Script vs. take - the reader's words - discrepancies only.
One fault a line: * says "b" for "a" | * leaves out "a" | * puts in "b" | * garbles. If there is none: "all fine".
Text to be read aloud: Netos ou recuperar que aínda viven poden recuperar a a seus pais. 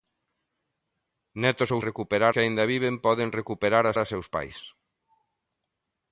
all fine